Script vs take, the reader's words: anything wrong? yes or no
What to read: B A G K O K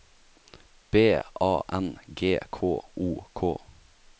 yes